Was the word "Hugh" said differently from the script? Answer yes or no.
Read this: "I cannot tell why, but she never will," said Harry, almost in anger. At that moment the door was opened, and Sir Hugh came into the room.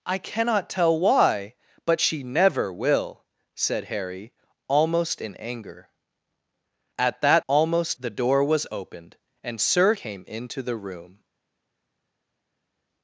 yes